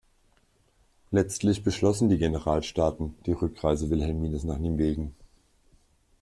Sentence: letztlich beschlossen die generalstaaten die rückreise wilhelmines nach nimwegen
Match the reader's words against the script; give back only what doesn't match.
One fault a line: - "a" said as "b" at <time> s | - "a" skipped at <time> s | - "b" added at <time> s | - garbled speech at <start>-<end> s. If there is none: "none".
none